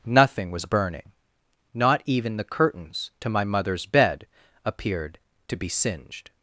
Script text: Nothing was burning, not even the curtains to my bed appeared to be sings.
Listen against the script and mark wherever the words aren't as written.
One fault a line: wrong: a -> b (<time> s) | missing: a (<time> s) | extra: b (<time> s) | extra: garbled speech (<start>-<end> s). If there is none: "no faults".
extra: mother's (3.4 s)
wrong: sings -> singed (5.7 s)